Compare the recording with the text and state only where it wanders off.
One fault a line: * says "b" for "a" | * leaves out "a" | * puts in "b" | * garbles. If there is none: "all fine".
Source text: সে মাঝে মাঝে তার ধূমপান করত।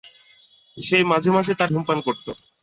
all fine